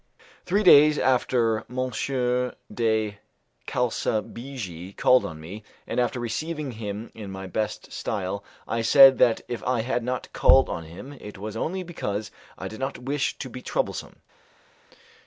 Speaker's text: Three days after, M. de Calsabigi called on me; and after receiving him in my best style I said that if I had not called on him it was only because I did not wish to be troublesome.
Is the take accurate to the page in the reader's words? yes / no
yes